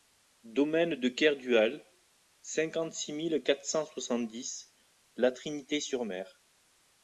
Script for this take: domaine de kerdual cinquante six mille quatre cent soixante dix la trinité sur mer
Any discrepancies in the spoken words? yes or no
no